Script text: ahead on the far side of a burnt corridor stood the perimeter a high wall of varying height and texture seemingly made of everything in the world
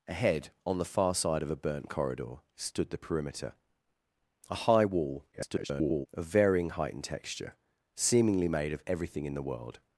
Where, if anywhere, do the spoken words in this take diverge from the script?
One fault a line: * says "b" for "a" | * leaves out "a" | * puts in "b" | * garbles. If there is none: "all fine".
* garbles